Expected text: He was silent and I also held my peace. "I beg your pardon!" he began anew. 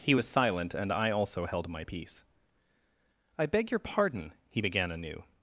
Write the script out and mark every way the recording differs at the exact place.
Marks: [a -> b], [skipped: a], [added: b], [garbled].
He was silent and I also held my peace. "I beg your pardon!" he began anew.